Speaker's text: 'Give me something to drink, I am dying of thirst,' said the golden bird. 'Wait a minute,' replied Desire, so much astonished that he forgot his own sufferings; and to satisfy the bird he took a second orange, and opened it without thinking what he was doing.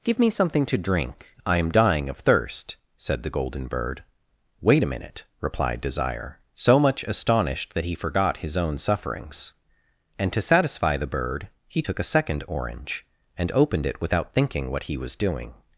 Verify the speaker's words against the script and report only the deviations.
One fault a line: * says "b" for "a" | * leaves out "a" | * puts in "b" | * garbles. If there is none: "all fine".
all fine